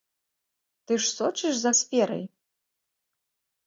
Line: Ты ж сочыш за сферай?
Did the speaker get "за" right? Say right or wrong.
right